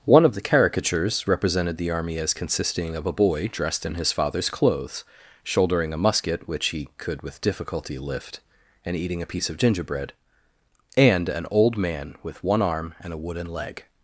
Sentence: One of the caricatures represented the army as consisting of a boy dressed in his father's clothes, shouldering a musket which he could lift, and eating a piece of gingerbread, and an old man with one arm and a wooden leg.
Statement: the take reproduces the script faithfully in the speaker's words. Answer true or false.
false